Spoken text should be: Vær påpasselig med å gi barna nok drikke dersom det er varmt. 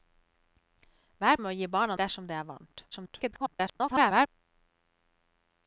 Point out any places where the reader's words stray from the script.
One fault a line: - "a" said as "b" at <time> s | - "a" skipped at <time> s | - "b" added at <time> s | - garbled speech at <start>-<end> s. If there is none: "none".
- "påpasselig" skipped at 1.4 s
- "nok drikke" skipped at 2.0 s
- garbled speech at 2.9-4.3 s